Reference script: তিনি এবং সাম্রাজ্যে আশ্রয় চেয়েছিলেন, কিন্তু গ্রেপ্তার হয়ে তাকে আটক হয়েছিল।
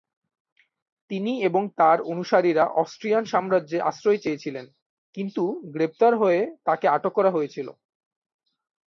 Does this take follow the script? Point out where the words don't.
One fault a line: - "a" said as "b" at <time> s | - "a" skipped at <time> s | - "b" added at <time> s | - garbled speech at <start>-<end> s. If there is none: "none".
- "তার অনুসারীরা অস্ট্রিয়ান" added at 1.8 s
- "করা" added at 7.1 s